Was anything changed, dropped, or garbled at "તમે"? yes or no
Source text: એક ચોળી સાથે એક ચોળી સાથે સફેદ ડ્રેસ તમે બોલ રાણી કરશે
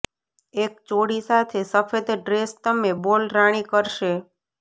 no